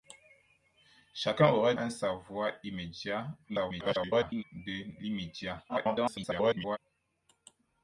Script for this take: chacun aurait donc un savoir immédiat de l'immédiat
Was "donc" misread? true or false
true